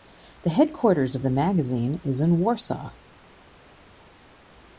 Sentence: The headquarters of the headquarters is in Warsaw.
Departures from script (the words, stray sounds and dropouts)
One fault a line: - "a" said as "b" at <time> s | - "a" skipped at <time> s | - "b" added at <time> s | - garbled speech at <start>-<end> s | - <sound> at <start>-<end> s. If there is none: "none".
- "headquarters" said as "magazine" at 1.3 s